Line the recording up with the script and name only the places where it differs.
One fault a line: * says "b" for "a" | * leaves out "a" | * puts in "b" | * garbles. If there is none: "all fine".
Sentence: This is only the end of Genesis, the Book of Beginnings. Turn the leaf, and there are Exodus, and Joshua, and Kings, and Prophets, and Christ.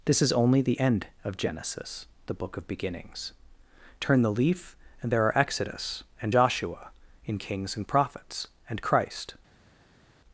* says "in" for "and"